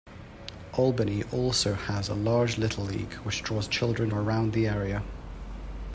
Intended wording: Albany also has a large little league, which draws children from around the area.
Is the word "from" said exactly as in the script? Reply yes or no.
no